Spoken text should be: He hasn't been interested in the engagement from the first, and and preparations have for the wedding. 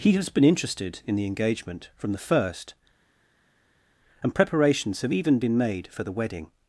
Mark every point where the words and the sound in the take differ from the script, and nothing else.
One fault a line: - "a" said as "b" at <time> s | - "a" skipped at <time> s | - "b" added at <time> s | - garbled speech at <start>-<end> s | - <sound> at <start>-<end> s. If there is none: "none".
- "hasn't" said as "has" at 0.1 s
- "and" skipped at 4.3 s
- "even been made" added at 5.1 s